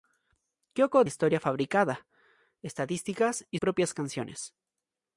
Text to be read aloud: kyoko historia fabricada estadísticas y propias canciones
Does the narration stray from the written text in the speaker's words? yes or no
no